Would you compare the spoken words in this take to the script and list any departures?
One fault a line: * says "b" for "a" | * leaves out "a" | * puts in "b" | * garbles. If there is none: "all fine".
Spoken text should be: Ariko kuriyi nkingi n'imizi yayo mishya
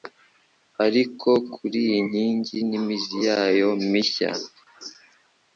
all fine